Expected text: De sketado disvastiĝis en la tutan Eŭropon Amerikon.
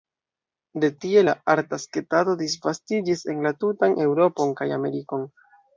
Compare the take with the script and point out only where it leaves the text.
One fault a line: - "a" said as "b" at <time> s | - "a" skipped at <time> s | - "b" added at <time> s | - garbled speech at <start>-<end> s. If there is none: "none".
- "tie la arta" added at 1.0 s
- "kaj" added at 4.6 s